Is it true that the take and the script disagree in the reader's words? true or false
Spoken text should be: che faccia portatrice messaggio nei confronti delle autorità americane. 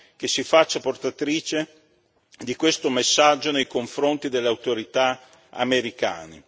true